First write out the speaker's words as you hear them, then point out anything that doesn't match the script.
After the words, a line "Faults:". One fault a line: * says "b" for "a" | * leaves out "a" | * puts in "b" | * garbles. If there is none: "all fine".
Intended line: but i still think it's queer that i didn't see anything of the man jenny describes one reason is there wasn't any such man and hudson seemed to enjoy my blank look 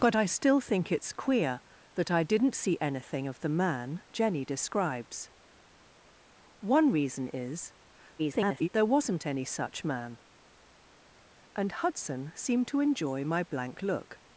but i still think it's queer that i didn't see anything of the man jenny describes one reason is [garbled] there wasn't any such man and hudson seemed to enjoy my blank look
Faults:
* garbles